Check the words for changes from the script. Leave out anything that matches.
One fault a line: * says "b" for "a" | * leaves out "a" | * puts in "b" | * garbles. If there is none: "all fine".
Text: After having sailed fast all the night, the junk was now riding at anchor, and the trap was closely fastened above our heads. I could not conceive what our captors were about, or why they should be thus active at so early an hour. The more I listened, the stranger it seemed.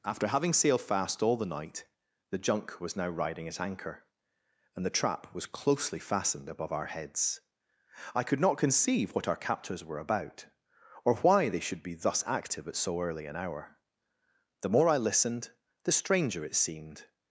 all fine